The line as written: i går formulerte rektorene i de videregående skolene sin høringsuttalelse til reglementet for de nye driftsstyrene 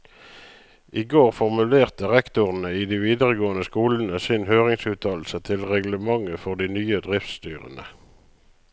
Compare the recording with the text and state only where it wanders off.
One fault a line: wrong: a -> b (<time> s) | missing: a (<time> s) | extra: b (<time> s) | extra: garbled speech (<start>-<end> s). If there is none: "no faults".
no faults